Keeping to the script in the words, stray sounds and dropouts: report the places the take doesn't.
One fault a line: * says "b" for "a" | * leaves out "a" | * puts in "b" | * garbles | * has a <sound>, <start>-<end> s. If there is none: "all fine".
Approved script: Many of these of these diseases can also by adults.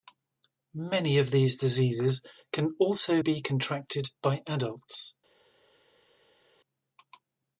* leaves out "of these"
* puts in "be contracted"